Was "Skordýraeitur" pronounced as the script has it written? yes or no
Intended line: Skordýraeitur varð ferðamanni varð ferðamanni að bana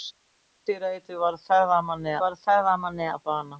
yes